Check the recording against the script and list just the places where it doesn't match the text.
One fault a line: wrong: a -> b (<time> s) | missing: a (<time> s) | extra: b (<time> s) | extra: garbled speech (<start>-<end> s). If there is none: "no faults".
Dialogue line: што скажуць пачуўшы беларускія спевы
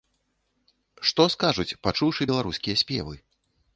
no faults